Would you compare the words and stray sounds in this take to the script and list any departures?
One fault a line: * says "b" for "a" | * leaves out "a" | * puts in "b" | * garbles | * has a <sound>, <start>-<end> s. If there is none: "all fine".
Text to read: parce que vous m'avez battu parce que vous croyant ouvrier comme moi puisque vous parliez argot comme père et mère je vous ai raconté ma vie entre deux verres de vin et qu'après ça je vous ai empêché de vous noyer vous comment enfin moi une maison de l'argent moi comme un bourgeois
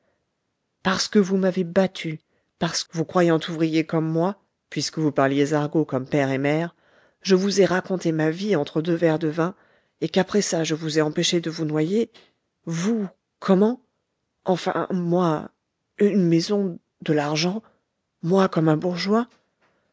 * leaves out "que"